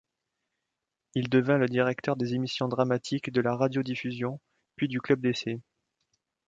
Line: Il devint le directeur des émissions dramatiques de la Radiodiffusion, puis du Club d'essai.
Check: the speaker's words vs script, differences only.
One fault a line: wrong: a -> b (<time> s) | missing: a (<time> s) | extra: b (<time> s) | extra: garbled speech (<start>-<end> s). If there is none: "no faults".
no faults